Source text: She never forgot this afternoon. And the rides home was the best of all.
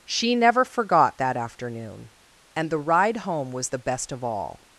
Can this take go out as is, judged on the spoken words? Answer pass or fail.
fail